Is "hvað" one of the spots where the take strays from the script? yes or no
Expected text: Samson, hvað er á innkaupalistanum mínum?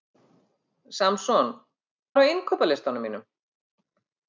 yes